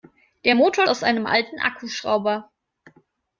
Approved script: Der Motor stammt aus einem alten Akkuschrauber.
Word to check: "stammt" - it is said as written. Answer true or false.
false